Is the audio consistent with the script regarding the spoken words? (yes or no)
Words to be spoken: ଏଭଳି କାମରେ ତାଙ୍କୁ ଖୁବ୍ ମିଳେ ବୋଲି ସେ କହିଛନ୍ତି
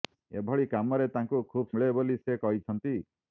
yes